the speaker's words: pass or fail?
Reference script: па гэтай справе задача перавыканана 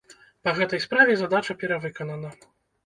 pass